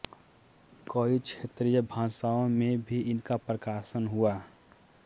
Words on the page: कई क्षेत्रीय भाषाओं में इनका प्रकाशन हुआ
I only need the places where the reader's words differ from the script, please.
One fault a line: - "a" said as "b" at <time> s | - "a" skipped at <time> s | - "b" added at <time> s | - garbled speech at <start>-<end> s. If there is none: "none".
- "भी" added at 2.8 s